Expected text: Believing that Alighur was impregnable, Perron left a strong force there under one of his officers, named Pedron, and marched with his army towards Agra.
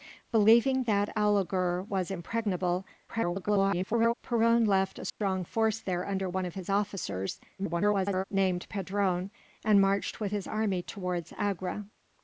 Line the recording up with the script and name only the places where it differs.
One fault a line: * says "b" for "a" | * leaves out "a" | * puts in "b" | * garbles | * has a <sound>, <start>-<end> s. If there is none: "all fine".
* garbles
* has a dropout, 5.1-5.2 s
* garbles